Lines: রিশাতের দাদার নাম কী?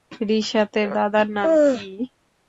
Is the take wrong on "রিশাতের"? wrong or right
right